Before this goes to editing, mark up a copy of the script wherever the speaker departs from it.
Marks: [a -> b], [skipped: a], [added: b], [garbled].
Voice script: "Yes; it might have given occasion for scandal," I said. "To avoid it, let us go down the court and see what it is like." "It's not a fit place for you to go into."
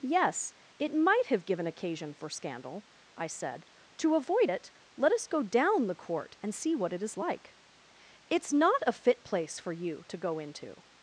"Yes; it might have given occasion for scandal," I said. "To avoid it, let us go down the court and see what it is like." "It's not a fit place for you to go into."